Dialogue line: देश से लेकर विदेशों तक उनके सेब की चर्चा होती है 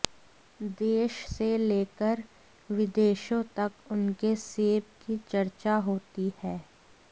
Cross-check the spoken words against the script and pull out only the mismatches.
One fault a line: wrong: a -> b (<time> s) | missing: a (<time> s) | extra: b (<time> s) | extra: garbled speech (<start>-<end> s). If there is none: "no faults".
no faults